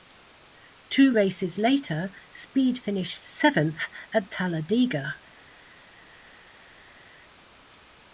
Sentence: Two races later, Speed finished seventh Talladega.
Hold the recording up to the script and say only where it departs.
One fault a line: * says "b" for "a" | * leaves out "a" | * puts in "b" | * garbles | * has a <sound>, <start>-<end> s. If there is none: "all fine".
* puts in "at"